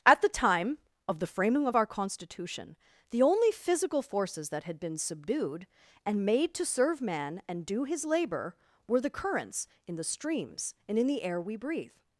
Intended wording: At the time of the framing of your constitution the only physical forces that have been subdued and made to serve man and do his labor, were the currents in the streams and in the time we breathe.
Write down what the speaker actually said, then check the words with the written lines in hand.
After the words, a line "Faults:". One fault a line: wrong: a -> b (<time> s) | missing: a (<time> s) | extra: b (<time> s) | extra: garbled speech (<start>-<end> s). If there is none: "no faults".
At the time of the framing of our constitution the only physical forces that had been subdued and made to serve man and do his labor, were the currents in the streams and in the air we breathe.
Faults:
wrong: your -> our (1.7 s)
wrong: have -> had (4.6 s)
wrong: time -> air (11.2 s)